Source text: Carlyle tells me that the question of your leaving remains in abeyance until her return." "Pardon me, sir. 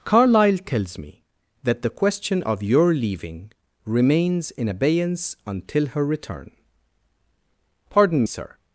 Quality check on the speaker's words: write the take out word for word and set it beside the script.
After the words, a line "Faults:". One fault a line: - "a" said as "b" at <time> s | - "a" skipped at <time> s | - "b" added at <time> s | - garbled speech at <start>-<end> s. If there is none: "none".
Carlyle tells me that the question of your leaving remains in abeyance until her return." "Pardon sir.
Faults:
- "me" skipped at 8.2 s